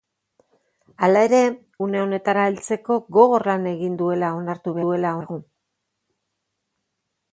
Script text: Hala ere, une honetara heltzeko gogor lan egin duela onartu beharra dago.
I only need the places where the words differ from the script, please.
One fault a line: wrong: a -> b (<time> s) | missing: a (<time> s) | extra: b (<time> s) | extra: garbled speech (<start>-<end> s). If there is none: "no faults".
wrong: beharra -> duela (4.9 s)